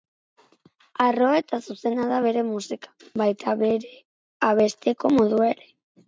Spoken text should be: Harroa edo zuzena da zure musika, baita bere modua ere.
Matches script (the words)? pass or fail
fail